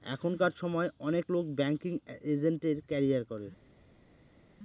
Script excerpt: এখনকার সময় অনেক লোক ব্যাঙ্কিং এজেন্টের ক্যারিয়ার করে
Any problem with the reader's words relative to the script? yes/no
no